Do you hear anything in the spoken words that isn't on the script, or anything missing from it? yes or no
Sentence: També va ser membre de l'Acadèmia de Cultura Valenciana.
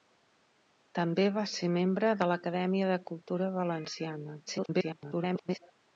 yes